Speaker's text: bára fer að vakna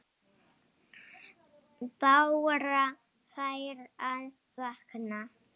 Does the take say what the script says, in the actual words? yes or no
yes